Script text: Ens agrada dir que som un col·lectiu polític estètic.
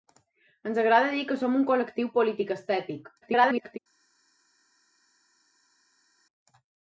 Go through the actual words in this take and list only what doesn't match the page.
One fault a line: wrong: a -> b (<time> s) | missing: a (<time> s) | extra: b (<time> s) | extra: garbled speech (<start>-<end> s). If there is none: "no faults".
extra: garbled speech (3.2-3.8 s)